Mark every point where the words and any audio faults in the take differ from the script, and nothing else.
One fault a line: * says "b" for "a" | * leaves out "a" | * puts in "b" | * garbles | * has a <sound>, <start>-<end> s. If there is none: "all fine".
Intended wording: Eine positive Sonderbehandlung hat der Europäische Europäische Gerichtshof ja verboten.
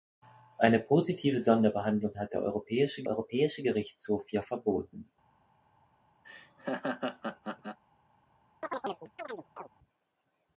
* has a laugh, 6.2-7.8 s
* has a chirp, 8.6-9.7 s